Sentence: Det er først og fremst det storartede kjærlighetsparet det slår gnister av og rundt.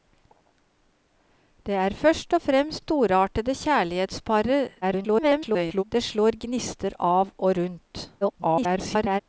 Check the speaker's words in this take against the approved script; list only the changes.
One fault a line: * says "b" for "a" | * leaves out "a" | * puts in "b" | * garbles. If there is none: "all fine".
* leaves out "det"
* garbles
* garbles